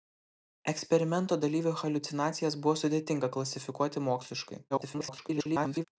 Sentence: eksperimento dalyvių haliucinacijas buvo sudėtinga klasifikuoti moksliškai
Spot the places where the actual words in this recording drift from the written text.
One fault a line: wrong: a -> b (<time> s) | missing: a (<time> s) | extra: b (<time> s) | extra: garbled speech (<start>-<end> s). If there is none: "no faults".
extra: garbled speech (4.7-5.9 s)